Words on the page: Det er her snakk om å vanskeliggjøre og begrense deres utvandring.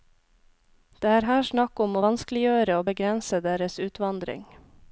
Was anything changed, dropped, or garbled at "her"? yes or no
no